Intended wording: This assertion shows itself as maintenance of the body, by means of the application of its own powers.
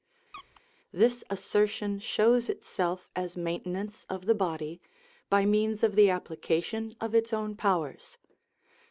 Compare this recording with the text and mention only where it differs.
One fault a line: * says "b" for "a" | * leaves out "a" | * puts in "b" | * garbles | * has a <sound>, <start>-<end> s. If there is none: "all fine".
* has a squeak, 0.3-0.6 s